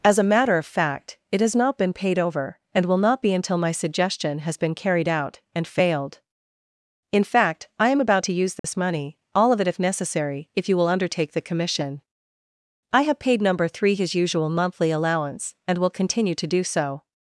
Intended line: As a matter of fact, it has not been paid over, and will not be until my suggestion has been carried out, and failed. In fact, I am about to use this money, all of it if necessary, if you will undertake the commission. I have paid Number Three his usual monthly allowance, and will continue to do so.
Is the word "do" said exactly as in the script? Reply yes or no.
yes